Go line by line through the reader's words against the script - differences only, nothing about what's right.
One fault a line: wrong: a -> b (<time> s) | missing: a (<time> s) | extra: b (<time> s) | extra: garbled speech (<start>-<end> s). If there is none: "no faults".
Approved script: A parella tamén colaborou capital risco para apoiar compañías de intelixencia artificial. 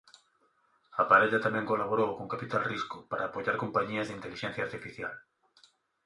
extra: con (2.2 s)